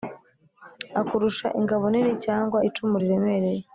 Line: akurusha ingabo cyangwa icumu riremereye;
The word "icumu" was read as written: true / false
true